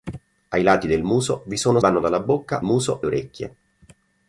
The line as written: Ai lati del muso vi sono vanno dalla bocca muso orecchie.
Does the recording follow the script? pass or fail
pass